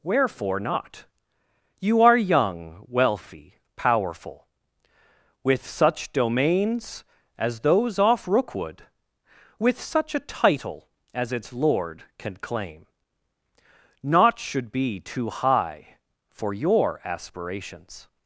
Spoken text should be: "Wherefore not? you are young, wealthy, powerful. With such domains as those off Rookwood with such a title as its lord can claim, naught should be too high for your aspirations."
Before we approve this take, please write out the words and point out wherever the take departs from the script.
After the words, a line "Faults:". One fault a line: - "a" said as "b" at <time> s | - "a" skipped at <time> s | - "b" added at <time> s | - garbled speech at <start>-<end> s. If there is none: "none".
"Wherefore not? you are young, wealthy, powerful. With such domains as those off Rookwood with such a title as its lord can claim, naught should be too high for your aspirations."
Faults:
none